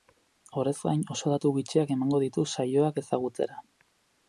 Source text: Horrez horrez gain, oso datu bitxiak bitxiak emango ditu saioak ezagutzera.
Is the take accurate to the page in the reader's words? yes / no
no